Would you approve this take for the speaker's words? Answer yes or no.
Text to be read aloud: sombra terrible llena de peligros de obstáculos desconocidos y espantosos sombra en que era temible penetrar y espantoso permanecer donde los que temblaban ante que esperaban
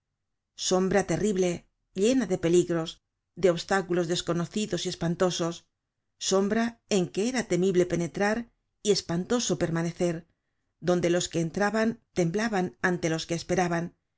no